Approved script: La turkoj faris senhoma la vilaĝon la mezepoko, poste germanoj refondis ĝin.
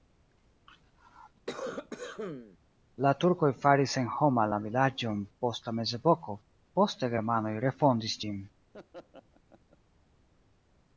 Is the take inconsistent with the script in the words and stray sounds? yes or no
yes